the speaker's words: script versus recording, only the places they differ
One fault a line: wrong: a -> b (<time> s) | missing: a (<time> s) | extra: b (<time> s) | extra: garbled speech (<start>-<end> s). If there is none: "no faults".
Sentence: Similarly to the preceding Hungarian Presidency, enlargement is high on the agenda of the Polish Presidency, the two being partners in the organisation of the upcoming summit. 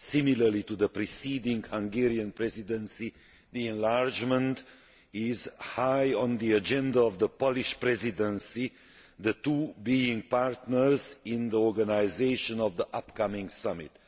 no faults